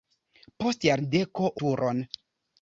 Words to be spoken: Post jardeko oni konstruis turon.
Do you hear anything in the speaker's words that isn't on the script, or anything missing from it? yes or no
yes